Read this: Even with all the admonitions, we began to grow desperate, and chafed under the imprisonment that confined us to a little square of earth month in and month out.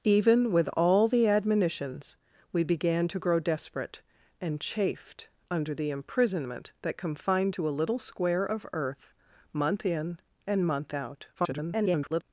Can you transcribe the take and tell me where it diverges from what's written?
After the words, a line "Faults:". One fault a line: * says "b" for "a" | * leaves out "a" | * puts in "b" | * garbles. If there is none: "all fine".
Even with all the admonitions, we began to grow desperate, and chafed under the imprisonment that confined to a little square of earth month in and month out. [garbled]
Faults:
* leaves out "us"
* garbles